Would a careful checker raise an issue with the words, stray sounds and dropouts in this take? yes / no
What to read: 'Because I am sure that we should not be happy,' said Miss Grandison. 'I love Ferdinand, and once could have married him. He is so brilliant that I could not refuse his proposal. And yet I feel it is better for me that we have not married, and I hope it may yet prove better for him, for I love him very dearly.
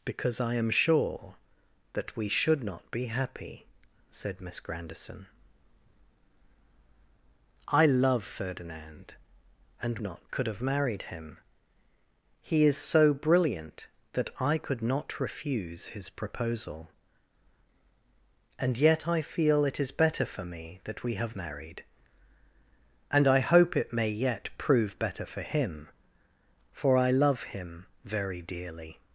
yes